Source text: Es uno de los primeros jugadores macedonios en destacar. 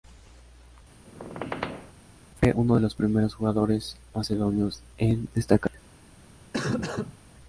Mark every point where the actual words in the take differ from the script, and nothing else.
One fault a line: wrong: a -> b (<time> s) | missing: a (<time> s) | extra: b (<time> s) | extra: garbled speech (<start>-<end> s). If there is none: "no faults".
wrong: Es -> Fue (2.4 s)